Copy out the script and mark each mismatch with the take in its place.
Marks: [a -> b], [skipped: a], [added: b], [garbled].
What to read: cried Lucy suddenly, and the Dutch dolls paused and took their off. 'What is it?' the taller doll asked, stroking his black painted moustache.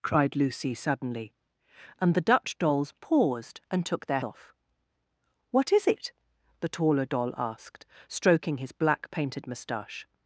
cried Lucy suddenly, and the Dutch dolls paused and took their off. 'What is it?' the taller doll asked, stroking his black painted moustache.